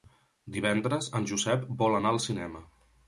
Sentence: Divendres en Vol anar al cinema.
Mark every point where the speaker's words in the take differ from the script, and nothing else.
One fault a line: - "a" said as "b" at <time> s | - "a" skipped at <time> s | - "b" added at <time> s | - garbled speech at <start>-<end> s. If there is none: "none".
- "Josep" added at 1.3 s